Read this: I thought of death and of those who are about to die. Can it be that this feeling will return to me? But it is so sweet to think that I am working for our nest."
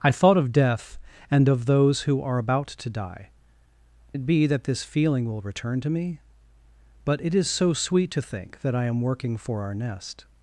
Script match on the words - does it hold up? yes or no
no